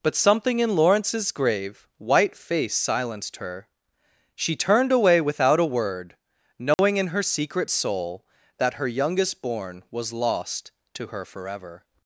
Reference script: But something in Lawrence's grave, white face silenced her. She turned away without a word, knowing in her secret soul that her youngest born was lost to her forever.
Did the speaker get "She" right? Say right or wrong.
right